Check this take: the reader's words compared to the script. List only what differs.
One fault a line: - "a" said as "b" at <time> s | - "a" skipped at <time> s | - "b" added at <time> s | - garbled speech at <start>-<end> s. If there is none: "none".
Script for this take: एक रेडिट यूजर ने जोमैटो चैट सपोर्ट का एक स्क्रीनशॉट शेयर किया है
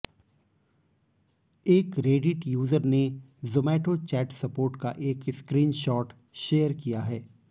none